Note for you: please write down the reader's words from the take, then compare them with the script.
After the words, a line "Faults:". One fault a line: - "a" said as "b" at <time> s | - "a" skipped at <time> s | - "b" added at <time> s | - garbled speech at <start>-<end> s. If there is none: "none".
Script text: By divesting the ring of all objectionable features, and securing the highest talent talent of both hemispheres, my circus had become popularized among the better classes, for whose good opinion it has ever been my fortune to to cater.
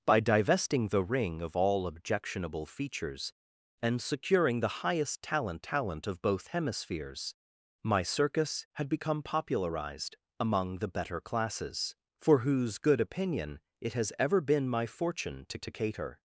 By divesting the ring of all objectionable features, and securing the highest talent talent of both hemispheres, my circus had become popularized among the better classes, for whose good opinion it has ever been my fortune to to cater.
Faults:
none